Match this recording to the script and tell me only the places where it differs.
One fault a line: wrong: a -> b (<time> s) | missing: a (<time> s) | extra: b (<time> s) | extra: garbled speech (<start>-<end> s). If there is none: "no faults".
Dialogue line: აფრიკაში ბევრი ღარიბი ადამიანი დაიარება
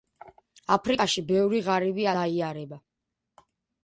missing: ადამიანი (2.1 s)